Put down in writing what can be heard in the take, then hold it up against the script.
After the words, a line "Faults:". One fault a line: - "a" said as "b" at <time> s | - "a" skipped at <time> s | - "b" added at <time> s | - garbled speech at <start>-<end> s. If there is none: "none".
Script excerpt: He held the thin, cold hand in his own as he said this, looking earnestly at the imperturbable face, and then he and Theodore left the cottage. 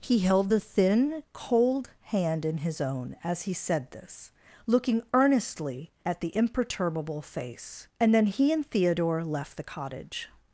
He held the thin, cold hand in his own as he said this, looking earnestly at the imperturbable face, and then he and Theodore left the cottage.
Faults:
none